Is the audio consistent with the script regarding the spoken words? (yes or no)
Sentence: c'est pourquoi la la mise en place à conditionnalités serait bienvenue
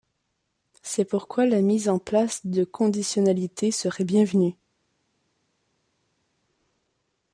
no